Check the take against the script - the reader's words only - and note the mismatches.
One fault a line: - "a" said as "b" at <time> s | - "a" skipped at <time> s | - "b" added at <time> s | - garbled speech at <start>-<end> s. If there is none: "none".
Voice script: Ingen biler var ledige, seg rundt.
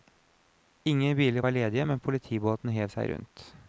- "men politibåten hev" added at 1.8 s